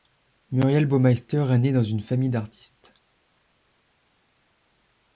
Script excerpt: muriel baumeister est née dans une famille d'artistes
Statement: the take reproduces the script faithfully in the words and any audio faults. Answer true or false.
true